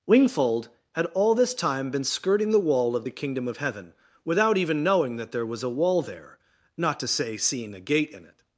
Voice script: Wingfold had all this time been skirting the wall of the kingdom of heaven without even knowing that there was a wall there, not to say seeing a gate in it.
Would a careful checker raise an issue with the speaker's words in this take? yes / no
no